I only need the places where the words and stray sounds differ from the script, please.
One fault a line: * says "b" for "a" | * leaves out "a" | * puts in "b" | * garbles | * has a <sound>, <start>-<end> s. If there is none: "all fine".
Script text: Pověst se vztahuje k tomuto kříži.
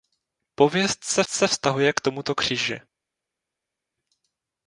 * puts in "se"